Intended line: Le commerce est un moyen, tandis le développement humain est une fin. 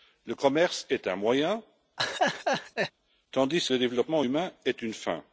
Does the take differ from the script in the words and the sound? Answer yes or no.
yes